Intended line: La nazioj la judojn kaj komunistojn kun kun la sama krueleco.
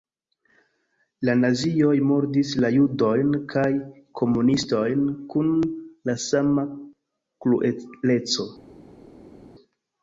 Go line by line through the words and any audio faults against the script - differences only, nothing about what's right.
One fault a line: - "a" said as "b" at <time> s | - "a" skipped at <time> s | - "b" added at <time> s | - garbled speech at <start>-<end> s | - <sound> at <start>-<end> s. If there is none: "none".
- "murdis" added at 2.1 s
- "kun" skipped at 5.5 s